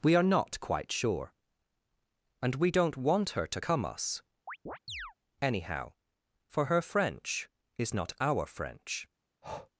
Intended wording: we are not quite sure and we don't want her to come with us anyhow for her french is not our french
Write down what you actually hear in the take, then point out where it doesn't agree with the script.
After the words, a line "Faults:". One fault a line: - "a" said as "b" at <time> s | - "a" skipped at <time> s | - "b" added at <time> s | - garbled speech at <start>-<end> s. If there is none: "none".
we are not quite sure and we don't want her to come us anyhow for her french is not our french
Faults:
- "with" skipped at 3.8 s